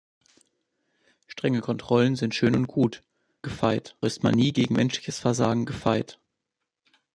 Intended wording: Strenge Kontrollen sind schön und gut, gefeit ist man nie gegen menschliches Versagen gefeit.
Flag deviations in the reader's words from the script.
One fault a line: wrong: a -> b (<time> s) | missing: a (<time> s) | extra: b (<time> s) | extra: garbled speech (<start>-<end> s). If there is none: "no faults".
no faults